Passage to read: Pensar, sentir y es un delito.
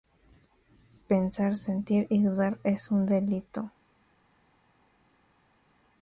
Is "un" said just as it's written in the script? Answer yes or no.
yes